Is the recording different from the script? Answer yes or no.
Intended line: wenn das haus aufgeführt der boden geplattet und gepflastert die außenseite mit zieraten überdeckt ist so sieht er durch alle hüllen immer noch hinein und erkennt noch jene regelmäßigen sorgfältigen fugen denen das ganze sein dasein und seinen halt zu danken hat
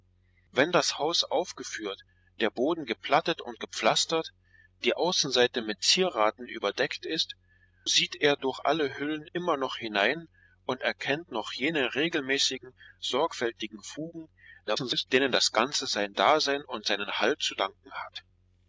yes